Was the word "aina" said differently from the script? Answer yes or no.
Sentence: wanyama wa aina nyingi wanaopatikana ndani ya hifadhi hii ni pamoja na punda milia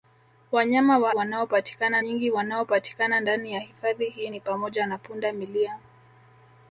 yes